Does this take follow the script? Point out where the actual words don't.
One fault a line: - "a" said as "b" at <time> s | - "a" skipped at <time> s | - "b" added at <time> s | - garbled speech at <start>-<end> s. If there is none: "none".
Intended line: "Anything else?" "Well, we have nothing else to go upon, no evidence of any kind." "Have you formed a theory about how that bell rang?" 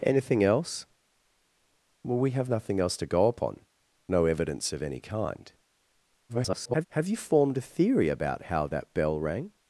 - garbled speech at 6.3-6.9 s